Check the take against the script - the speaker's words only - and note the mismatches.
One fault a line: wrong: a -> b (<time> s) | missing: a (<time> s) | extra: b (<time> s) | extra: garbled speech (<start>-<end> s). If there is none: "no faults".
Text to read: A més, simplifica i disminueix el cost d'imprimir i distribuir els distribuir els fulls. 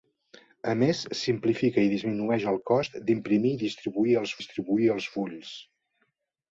no faults